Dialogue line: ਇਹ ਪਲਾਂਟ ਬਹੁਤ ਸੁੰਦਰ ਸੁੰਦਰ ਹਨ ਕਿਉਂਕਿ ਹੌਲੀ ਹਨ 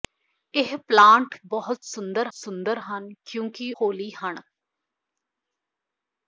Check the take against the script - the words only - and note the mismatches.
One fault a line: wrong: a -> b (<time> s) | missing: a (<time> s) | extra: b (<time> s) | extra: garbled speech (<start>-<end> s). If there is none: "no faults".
no faults